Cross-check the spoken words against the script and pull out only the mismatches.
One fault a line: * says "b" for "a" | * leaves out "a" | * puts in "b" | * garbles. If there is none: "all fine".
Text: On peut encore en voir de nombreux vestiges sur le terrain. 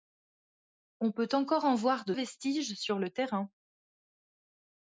* leaves out "nombreux"